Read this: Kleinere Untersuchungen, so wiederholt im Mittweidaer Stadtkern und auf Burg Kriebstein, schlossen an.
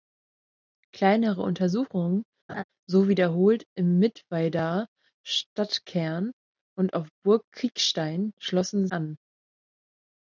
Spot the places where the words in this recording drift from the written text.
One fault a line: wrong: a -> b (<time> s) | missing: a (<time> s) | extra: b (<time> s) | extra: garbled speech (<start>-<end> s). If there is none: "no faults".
no faults